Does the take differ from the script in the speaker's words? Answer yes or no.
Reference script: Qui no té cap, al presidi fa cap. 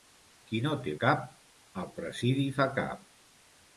no